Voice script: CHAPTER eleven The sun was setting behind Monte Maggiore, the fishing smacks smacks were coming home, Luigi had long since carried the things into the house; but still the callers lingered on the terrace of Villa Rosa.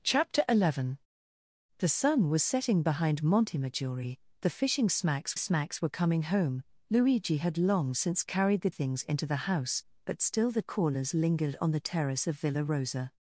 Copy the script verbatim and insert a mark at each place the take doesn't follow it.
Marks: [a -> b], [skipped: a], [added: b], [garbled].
CHAPTER eleven The sun was setting behind Monte Maggiore, the fishing smacks smacks were coming home, Luigi had long since carried the things into the house; but still the callers lingered on the terrace of Villa Rosa.